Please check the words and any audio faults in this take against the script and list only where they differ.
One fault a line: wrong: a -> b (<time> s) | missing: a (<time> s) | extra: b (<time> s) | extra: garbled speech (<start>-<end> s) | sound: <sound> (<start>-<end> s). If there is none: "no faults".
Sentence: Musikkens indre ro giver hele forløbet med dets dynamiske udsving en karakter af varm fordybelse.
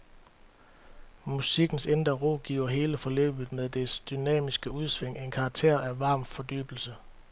no faults